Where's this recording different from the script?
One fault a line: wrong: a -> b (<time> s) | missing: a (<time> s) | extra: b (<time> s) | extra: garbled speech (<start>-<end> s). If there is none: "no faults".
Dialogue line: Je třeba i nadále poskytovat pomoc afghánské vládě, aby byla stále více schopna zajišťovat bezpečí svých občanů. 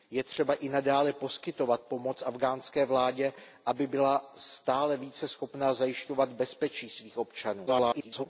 extra: garbled speech (7.7-8.3 s)